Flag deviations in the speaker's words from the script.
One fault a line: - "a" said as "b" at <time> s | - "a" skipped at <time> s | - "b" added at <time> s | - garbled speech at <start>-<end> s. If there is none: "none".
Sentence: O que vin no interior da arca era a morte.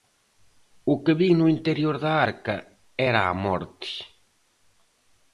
none